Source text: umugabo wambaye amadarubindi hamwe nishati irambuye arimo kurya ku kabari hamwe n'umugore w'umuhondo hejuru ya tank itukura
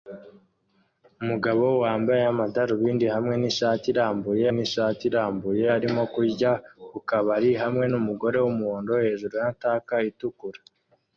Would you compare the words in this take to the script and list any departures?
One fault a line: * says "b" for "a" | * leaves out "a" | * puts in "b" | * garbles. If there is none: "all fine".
* puts in "nishati irambuye"